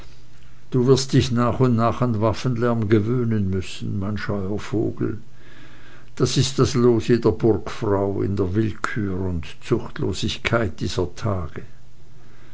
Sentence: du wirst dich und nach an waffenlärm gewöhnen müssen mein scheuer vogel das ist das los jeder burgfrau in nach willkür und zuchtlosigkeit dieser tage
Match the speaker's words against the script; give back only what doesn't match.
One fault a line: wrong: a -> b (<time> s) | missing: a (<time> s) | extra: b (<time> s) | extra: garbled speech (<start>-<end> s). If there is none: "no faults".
extra: nach (1.3 s)
wrong: nach -> der (8.3 s)